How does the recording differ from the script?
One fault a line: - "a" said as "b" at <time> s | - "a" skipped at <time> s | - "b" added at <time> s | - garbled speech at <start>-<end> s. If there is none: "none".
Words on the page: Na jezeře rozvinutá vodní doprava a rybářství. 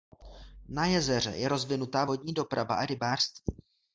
- "je" added at 1.3 s